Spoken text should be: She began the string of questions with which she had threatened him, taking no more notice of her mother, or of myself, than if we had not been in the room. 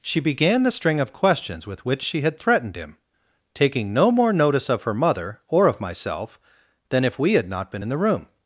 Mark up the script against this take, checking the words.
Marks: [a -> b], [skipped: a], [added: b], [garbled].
She began the string of questions with which she had threatened him, taking no more notice of her mother, or of myself, than if we had not been in the room.